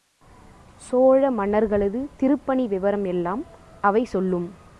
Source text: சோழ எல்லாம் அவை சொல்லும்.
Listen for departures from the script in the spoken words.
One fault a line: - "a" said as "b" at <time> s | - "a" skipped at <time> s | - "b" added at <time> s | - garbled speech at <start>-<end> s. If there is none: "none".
- "மன்னர்களது திருப்பணி விவரம்" added at 1.3 s